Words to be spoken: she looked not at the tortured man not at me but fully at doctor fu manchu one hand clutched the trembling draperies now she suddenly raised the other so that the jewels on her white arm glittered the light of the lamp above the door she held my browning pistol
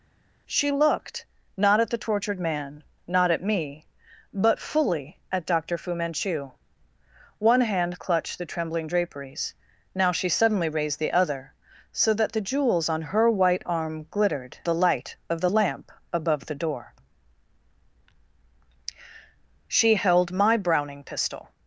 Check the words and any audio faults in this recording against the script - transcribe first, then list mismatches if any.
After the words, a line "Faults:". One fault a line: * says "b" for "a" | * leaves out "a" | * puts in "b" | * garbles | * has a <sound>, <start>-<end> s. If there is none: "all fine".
she looked not at the tortured man not at me but fully at doctor fu manchu one hand clutched the trembling draperies now she suddenly raised the other so that the jewels on her white arm glittered the light of the lamp above the door she held my browning pistol
Faults:
all fine